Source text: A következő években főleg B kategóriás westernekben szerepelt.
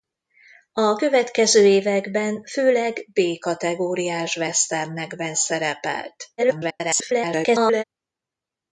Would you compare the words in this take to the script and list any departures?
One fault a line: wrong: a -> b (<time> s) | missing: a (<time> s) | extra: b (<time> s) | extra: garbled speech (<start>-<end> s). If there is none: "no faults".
extra: garbled speech (6.4-7.8 s)